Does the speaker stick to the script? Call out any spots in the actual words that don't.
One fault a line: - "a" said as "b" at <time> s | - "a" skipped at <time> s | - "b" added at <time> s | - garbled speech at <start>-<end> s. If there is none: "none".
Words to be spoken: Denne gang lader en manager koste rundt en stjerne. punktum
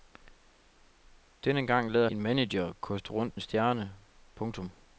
none